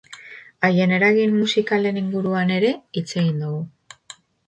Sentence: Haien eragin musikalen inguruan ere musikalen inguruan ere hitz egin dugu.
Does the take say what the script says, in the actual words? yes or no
no